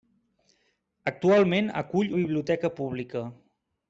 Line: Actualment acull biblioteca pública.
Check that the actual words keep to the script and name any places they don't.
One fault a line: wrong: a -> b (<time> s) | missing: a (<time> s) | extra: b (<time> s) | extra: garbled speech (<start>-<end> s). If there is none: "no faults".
no faults